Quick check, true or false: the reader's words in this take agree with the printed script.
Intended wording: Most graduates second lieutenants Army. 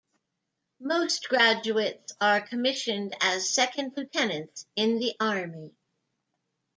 false